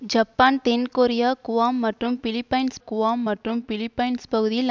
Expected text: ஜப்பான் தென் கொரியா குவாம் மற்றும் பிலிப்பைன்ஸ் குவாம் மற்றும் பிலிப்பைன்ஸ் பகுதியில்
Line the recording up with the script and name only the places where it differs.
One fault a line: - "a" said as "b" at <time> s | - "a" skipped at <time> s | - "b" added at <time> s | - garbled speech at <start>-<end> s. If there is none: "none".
none